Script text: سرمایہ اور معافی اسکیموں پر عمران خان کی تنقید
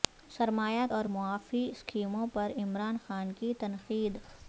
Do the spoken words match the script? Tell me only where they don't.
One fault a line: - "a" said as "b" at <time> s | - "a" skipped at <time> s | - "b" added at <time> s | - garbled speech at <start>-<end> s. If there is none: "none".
none